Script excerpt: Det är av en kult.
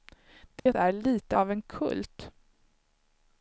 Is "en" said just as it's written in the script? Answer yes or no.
yes